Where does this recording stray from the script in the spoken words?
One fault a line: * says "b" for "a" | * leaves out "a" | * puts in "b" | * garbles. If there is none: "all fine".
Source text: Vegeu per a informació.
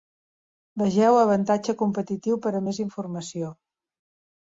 * puts in "avantatge competitiu"
* puts in "més"